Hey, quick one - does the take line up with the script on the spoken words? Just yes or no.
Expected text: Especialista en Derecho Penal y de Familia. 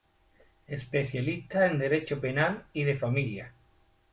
yes